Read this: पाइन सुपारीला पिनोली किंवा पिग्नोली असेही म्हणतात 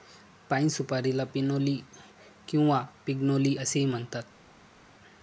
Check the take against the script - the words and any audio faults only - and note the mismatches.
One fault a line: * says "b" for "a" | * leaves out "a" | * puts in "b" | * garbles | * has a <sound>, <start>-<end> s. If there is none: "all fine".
all fine